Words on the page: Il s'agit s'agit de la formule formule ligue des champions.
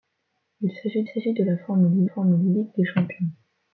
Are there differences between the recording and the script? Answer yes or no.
no